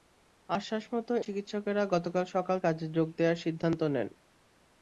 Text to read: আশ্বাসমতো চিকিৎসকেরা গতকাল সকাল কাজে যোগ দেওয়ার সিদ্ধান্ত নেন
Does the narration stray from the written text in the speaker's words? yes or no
no